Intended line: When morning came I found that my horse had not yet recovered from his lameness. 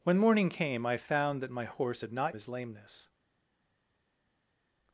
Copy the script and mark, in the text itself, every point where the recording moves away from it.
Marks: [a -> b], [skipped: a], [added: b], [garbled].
When morning came I found that my horse had not [skipped: yet recovered from] his lameness.